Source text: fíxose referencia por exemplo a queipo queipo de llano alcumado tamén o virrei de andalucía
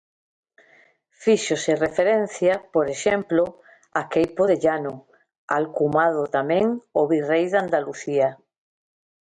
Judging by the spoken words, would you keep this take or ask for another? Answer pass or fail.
fail